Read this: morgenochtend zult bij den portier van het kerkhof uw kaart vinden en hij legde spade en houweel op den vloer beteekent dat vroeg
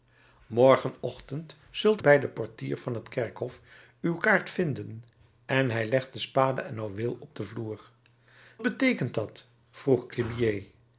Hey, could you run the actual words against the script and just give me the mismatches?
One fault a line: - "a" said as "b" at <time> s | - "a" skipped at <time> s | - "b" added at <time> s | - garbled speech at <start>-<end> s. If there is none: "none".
none